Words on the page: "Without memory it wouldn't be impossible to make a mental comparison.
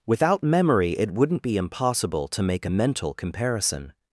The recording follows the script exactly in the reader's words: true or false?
true